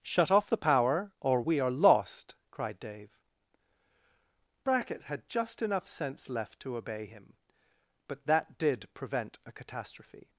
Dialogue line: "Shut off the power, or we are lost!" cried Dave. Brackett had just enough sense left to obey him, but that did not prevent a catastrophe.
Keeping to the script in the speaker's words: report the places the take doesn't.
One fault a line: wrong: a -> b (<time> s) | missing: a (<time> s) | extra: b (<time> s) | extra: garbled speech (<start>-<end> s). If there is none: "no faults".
missing: not (8.9 s)